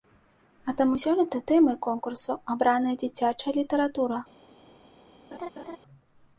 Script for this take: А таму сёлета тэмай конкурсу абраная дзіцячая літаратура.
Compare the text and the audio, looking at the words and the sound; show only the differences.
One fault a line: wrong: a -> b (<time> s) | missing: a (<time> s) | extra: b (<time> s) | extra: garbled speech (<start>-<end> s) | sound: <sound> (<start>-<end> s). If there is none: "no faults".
sound: laugh (5.3-5.8 s)